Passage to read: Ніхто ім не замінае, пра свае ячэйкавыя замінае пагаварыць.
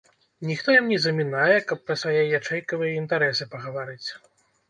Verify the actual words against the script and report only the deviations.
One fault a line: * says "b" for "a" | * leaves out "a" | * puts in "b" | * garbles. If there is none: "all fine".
* puts in "каб"
* says "інтарэсы" for "замінае"